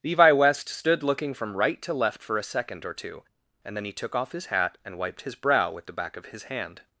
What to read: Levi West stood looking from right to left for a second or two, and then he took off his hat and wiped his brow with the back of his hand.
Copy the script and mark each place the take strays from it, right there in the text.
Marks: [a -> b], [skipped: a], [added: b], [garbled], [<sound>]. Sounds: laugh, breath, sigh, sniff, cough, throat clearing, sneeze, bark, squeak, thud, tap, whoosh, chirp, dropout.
Levi West stood looking from right to left for a second or two, and then he took off his hat and wiped his brow with the back of his hand.